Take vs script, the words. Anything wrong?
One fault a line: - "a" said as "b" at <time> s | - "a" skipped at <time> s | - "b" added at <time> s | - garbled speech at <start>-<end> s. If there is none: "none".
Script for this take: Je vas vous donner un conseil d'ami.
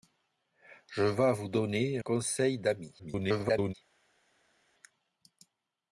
- "un" skipped at 2.0 s
- garbled speech at 3.0-3.7 s